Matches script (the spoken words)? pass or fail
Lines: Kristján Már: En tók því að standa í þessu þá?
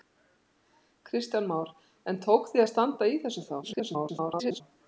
fail